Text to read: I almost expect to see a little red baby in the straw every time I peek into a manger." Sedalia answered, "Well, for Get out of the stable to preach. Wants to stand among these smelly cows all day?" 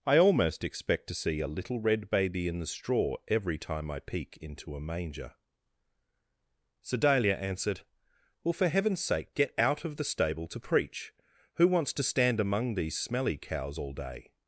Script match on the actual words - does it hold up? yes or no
no